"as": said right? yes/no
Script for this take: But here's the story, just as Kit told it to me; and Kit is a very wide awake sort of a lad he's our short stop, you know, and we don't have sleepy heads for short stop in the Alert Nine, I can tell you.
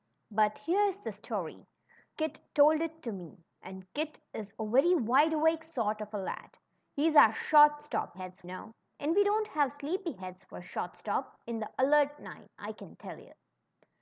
no